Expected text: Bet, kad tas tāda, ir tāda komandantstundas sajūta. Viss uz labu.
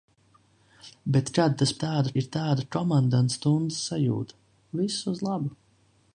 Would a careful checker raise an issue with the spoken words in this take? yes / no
no